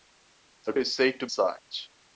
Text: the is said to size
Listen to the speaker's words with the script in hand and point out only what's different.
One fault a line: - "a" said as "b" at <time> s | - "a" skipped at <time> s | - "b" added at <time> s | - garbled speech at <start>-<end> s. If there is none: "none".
none